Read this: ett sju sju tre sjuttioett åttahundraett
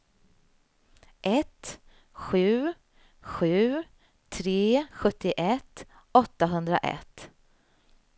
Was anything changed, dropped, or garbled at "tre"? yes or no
no